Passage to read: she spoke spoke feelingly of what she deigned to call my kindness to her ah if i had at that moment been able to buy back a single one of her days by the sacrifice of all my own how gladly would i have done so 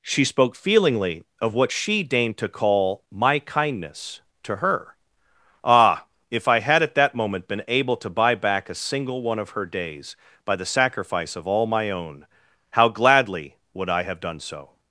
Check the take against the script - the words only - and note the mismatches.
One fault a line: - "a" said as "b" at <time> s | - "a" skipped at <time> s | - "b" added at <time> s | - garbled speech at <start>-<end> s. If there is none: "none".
- "spoke" skipped at 0.6 s